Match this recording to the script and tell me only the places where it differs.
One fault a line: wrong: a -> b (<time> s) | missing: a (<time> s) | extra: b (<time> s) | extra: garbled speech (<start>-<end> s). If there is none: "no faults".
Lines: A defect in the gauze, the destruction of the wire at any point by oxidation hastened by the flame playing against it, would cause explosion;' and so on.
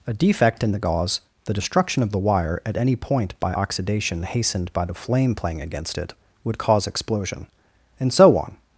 no faults